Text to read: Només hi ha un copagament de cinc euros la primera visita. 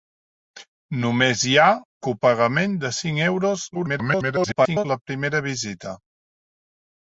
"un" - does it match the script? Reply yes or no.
no